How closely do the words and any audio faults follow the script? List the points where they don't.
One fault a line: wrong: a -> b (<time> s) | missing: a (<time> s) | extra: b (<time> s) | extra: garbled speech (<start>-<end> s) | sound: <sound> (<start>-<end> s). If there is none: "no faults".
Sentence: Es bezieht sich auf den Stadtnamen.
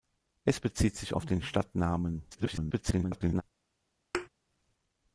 extra: garbled speech (2.3-3.4 s)
sound: thud (4.1-4.3 s)